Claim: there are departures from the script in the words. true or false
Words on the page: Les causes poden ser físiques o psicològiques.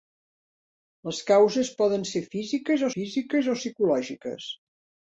true